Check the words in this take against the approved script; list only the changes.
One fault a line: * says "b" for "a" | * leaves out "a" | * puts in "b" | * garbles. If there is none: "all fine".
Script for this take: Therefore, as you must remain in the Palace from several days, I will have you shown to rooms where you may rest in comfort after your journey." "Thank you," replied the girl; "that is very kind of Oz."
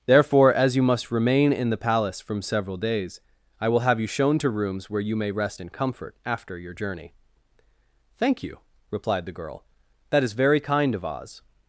all fine